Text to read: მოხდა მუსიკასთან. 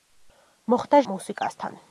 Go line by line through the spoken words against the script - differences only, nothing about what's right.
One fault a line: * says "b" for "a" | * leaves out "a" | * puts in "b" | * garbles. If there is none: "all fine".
all fine